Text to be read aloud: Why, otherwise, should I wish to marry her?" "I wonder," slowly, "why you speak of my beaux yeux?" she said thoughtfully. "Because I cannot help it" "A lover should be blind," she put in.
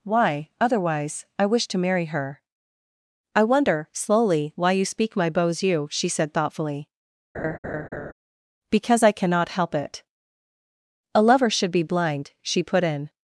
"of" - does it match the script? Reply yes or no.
no